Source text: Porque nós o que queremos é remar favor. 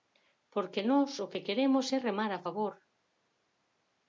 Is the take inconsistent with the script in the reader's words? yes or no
yes